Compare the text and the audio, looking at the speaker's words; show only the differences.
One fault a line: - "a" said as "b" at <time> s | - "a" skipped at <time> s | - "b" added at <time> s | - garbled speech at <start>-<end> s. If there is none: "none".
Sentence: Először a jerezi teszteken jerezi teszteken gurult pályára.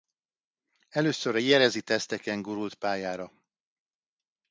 - "jerezi teszteken" skipped at 2.4 s